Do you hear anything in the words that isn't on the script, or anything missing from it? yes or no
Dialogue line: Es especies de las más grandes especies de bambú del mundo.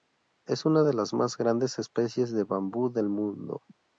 yes